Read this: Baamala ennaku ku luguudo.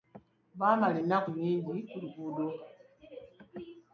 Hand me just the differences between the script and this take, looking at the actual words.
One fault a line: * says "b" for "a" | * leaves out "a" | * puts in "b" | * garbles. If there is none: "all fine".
* puts in "nnyingi"